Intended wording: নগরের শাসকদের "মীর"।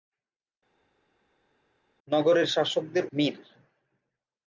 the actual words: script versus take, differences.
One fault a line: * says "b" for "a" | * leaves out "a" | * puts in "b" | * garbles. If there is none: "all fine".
all fine